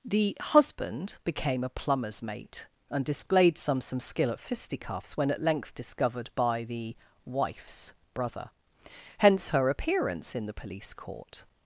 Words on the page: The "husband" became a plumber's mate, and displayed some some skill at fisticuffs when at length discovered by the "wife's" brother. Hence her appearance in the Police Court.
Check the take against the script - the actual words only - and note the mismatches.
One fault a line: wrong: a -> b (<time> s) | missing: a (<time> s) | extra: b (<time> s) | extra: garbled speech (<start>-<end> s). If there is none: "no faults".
no faults